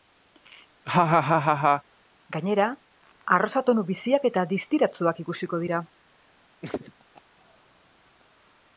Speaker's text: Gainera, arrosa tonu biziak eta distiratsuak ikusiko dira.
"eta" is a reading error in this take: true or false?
false